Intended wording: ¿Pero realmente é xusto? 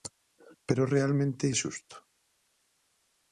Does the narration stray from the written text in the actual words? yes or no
no